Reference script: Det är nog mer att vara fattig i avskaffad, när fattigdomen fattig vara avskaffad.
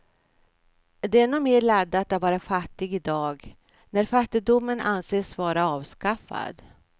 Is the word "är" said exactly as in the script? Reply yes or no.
yes